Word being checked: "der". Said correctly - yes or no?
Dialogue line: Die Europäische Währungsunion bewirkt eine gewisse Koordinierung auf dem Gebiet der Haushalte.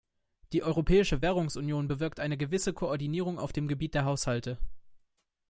yes